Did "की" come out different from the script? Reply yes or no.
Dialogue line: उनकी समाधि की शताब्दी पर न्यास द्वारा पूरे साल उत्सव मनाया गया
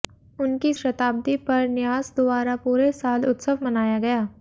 yes